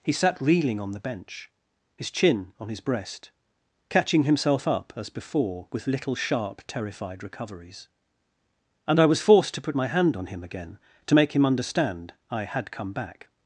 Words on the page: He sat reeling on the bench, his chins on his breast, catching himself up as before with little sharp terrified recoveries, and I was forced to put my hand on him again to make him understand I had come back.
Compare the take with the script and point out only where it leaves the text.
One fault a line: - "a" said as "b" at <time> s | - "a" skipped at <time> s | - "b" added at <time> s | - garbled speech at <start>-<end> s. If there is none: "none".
- "chins" said as "chin" at 2.1 s